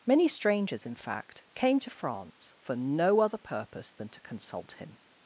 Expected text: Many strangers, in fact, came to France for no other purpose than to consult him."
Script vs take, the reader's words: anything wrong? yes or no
no